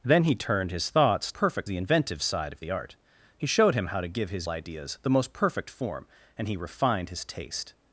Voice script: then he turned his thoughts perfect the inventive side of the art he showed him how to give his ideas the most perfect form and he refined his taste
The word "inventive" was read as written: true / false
true